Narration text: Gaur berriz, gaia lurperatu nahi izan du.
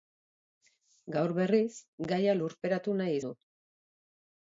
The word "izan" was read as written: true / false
false